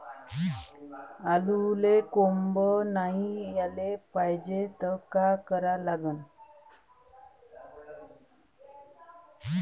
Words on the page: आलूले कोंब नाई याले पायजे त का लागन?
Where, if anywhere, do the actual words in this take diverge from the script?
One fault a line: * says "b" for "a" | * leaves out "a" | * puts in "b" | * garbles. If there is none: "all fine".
* puts in "करा"